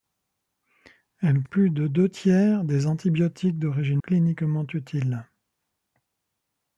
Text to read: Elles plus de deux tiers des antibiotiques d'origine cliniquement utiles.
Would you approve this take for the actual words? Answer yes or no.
yes